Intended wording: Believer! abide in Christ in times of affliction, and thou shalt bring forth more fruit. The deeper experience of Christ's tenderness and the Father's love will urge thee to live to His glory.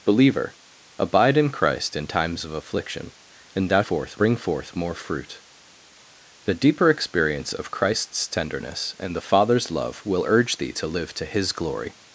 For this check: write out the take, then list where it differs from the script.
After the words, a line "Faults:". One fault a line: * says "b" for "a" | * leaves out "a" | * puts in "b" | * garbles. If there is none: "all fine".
Believer! abide in Christ in times of affliction, and thou forth bring forth more fruit. The deeper experience of Christ's tenderness and the Father's love will urge thee to live to His glory.
Faults:
* says "forth" for "shalt"